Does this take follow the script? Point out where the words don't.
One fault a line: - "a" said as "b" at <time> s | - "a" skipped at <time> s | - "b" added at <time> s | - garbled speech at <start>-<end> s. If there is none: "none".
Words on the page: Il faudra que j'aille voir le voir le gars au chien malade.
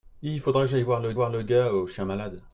none